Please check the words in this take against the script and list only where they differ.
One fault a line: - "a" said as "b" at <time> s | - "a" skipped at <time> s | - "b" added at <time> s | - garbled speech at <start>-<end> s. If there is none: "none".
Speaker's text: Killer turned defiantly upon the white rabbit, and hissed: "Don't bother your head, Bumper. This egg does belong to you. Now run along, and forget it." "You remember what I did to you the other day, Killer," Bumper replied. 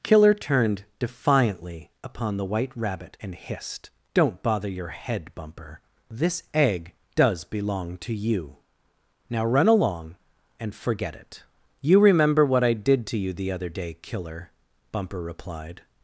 none